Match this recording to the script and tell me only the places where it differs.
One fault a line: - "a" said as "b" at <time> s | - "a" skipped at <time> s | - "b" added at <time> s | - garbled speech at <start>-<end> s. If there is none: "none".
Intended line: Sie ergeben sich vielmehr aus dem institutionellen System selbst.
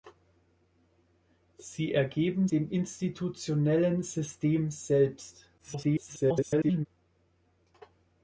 - "sich vielmehr aus" skipped at 2.5 s
- garbled speech at 5.6-6.9 s